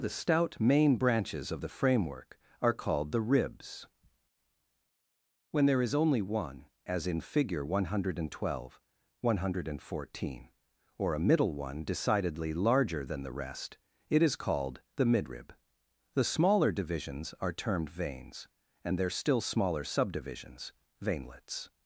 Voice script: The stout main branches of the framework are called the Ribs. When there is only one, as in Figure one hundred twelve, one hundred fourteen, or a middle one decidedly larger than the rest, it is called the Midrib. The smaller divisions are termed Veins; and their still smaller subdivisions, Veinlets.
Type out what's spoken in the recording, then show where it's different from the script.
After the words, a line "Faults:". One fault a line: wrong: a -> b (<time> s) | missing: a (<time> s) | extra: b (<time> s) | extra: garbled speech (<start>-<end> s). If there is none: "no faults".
The stout main branches of the framework are called the Ribs. When there is only one, as in Figure one hundred twelve, one hundred fourteen, or a middle one decidedly larger than the rest, it is called the Midrib. The smaller divisions are termed Veins; and their still smaller subdivisions, Veinlets.
Faults:
no faults